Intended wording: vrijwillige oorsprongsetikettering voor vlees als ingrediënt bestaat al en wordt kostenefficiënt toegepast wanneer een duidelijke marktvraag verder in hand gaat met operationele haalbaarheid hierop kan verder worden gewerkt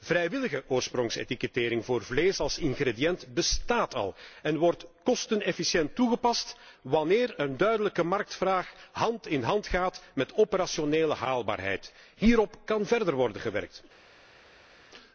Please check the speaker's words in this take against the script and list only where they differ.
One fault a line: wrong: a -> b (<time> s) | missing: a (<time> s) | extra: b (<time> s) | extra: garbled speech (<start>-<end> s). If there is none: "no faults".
wrong: verder -> hand (8.9 s)